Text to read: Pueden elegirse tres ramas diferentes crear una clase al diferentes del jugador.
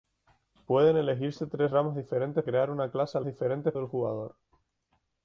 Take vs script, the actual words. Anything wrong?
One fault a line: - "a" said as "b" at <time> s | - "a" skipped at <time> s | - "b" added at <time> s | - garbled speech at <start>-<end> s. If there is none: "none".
none